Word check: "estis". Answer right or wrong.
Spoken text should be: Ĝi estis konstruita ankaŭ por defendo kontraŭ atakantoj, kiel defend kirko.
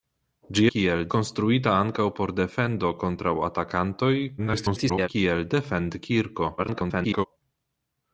wrong